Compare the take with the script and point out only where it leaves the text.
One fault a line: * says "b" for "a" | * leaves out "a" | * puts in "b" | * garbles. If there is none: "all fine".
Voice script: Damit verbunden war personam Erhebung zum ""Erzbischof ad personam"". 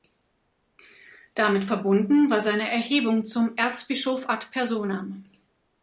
* says "seine" for "personam"